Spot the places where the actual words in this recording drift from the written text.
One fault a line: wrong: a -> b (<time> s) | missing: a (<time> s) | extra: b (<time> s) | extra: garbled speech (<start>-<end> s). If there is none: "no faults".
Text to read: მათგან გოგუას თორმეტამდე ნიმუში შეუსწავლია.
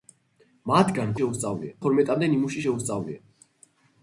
wrong: გოგუას -> შეუსწავლია (1.2 s)